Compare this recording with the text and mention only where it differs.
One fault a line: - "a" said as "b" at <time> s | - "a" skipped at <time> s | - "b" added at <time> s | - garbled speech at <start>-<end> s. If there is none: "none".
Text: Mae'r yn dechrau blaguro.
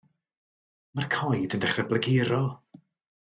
- "coed" added at 1.1 s